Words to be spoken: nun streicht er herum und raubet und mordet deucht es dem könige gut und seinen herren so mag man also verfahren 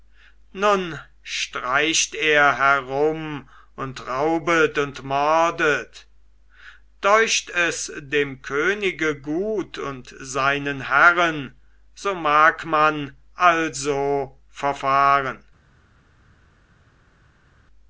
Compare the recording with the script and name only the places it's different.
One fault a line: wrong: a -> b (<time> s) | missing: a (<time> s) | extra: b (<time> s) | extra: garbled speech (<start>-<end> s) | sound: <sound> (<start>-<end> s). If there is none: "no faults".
no faults